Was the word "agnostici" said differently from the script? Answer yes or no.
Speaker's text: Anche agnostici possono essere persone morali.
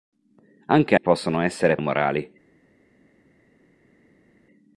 yes